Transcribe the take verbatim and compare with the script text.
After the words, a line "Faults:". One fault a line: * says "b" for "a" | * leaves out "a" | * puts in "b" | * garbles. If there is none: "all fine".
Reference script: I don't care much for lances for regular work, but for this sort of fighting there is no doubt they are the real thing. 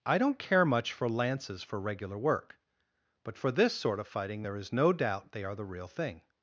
I don't care much for lances for regular work, but for this sort of fighting there is no doubt they are the real thing.
Faults:
all fine